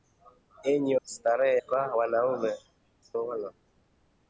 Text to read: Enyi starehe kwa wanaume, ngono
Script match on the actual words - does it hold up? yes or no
yes